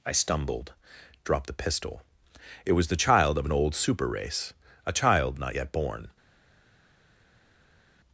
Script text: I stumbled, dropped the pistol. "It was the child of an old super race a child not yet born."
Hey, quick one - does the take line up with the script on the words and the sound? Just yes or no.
yes